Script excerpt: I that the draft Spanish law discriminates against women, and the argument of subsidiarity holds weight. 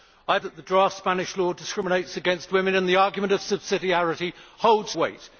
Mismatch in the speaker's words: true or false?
false